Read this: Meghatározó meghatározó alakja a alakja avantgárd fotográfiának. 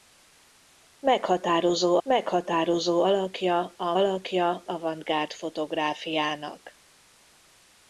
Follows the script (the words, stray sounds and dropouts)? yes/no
yes